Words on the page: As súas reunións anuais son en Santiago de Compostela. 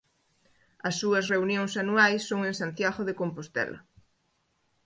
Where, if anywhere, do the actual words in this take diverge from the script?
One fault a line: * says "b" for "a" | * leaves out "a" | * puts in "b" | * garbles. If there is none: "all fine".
all fine